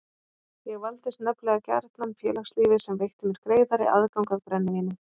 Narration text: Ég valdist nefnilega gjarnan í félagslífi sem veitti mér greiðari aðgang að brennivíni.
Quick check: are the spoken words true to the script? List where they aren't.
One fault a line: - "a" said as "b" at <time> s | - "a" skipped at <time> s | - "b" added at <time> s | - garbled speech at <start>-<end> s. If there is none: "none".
none